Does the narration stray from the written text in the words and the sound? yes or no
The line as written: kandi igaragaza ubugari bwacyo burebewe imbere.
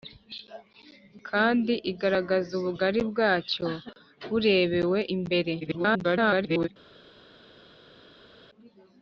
yes